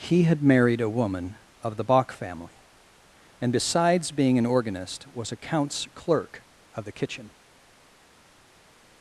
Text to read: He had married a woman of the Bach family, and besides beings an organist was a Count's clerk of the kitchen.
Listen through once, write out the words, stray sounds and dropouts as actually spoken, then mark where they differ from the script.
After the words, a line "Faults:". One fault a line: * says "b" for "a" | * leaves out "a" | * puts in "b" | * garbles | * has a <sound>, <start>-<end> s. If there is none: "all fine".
He had married a woman of the Bach family, and besides being an organist was a Count's clerk of the kitchen.
Faults:
* says "being" for "beings"